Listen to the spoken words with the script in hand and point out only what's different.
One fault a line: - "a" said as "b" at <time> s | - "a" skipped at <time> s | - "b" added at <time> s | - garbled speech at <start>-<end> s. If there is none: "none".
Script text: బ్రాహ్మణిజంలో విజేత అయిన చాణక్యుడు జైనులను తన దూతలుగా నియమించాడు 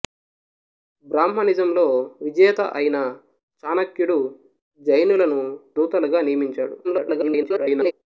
- "తన" skipped at 5.4 s
- garbled speech at 6.8-7.9 s